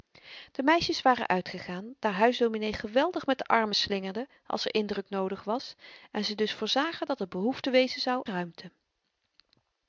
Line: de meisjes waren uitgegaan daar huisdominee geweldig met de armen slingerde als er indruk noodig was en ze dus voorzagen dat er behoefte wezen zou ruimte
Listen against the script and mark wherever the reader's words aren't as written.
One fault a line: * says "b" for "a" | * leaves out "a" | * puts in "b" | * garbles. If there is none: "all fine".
all fine